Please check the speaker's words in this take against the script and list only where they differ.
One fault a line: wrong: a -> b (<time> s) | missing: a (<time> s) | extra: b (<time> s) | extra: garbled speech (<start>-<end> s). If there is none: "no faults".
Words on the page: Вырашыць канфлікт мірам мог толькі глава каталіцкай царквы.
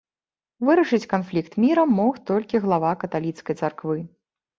no faults